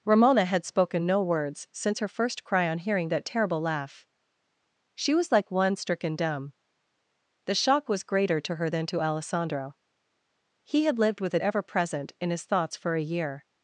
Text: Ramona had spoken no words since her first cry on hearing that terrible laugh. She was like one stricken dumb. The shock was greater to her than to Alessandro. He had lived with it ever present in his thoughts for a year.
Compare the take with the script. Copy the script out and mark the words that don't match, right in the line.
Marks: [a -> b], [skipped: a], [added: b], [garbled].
Ramona had spoken no words since her first cry on hearing that terrible laugh. She was like one stricken dumb. The shock was greater to her than to Alessandro. He had lived with it ever present in his thoughts for a year.